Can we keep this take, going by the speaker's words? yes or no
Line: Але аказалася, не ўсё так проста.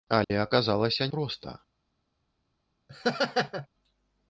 no